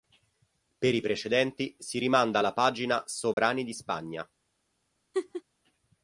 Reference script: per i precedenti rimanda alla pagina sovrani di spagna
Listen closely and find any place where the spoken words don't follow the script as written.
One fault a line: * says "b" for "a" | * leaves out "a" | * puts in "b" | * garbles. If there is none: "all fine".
* puts in "si"